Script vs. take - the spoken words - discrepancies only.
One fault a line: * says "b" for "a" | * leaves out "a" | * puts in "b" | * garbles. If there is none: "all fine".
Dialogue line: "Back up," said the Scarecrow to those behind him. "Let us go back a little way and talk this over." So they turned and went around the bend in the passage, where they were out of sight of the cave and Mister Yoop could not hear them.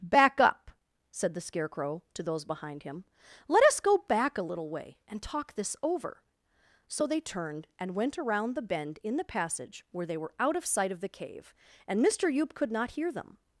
all fine